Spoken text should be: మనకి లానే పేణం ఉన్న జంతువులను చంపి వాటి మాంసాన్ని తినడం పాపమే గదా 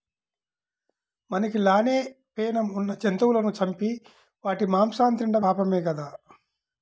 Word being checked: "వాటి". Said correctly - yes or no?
yes